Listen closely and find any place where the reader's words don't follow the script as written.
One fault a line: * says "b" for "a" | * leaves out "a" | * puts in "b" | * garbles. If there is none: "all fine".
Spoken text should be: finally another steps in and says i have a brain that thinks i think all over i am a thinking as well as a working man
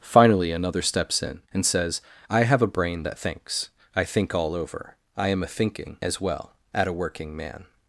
* says "at" for "as"